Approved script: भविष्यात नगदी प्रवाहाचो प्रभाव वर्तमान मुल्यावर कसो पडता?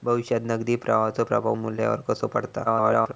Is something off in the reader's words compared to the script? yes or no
yes